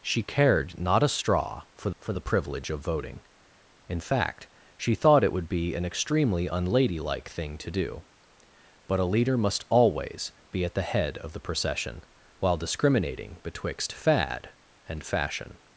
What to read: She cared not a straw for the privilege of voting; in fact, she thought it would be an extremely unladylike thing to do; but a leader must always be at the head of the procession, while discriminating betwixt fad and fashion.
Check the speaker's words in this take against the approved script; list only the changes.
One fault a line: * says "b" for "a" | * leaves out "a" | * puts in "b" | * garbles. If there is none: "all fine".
* puts in "for"